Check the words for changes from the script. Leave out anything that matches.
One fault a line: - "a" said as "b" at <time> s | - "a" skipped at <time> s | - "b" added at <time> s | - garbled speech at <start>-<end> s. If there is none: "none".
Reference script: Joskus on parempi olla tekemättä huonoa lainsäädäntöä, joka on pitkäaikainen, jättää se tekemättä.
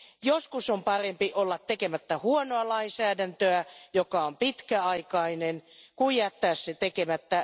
- "kuin" added at 6.0 s